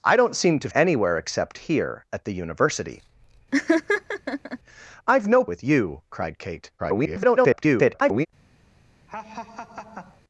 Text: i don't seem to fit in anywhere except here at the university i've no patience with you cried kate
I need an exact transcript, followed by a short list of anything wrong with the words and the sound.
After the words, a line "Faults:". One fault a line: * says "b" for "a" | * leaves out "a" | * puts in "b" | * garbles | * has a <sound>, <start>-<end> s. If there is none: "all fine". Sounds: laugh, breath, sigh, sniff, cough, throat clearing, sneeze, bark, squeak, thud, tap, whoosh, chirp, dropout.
i don't seem to anywhere except here at the university i've no with you cried kate [garbled]
Faults:
* leaves out "fit in"
* has a laugh, 3.5-4.6 s
* leaves out "patience"
* garbles
* has a laugh, 9.1-10.2 s